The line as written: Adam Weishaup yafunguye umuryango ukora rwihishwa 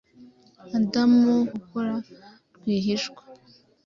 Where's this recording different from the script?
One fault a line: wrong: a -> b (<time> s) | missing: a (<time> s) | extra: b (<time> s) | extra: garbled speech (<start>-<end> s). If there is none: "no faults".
missing: Weishaup yafunguye umuryango (1.1 s)